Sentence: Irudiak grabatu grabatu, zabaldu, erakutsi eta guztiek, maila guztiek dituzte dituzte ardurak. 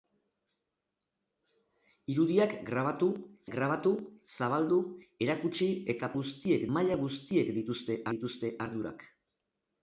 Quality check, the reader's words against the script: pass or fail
pass